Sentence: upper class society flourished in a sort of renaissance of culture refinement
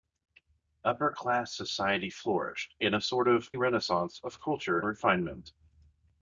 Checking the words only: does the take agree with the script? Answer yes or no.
yes